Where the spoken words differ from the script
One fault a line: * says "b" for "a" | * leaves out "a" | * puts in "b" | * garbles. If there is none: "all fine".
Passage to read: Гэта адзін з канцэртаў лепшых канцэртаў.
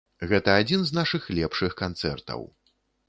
* says "нашых" for "канцэртаў"